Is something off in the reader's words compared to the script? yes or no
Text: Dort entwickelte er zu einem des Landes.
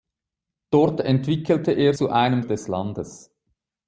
no